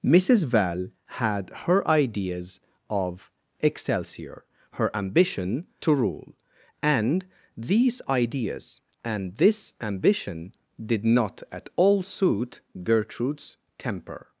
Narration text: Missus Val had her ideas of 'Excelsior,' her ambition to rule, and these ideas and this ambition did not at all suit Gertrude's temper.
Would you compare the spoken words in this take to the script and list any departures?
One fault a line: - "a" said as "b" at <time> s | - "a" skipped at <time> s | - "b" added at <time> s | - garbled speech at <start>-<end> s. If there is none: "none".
none